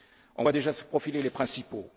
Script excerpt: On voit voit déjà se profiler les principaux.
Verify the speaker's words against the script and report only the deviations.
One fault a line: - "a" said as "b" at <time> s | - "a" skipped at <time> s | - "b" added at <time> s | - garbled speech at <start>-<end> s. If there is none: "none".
- "voit" skipped at 0.5 s